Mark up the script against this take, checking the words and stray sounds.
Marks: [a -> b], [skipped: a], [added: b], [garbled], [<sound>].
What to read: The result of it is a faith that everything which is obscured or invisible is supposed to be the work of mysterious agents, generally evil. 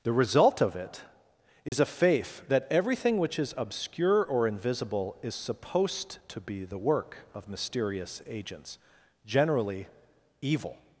The result of it is [dropout] a faith that everything which is [obscured -> obscure] or invisible is supposed to be the work of mysterious agents, generally evil.